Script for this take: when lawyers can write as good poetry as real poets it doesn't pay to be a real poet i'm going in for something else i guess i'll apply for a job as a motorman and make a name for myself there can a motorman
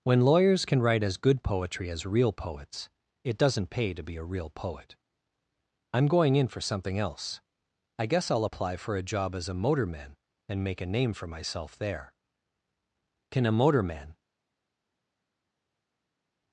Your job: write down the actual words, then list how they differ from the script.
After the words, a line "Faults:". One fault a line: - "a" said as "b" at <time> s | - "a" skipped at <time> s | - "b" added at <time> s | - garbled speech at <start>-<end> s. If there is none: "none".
when lawyers can write as good poetry as real poets it doesn't pay to be a real poet i'm going in for something else i guess i'll apply for a job as a motorman and make a name for myself there can a motorman
Faults:
none